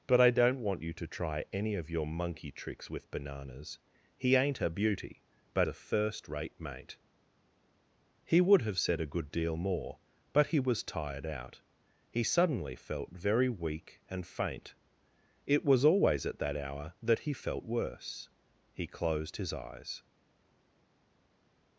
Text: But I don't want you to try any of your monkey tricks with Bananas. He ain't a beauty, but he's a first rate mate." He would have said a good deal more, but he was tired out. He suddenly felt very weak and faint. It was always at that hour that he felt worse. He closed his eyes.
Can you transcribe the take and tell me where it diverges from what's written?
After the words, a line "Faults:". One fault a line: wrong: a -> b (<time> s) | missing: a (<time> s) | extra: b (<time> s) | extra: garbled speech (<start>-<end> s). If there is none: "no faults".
But I don't want you to try any of your monkey tricks with Bananas. He ain't a beauty, but a first rate mate." He would have said a good deal more, but he was tired out. He suddenly felt very weak and faint. It was always at that hour that he felt worse. He closed his eyes.
Faults:
missing: he's (5.7 s)